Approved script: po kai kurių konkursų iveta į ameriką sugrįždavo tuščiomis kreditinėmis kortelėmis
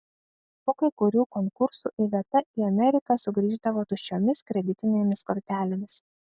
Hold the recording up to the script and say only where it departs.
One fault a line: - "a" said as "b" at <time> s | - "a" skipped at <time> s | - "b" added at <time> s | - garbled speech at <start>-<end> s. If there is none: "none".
none